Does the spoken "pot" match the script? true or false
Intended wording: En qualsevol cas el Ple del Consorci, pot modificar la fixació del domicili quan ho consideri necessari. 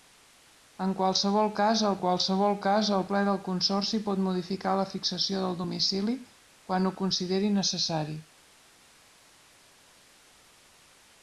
true